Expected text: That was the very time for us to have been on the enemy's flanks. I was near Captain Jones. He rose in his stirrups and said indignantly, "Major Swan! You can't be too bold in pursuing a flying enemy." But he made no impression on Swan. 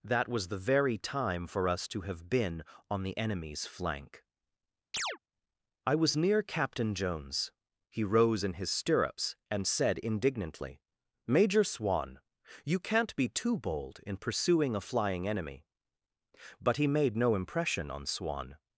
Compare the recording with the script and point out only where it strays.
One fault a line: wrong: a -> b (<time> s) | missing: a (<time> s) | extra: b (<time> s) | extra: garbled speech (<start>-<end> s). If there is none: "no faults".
wrong: flanks -> flank (3.6 s)